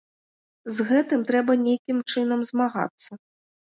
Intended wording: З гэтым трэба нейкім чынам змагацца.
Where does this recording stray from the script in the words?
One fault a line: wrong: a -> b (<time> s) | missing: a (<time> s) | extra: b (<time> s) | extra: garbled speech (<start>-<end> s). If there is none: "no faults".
no faults